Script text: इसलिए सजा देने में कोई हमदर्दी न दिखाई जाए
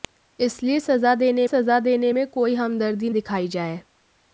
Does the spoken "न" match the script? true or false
false